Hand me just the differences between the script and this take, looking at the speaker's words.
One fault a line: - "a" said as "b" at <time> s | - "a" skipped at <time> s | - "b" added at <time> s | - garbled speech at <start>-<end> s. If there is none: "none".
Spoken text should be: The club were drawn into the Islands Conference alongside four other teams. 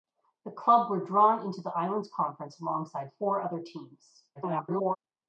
- garbled speech at 4.4-5.0 s